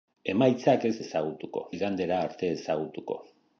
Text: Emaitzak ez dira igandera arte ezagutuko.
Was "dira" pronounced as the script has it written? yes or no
no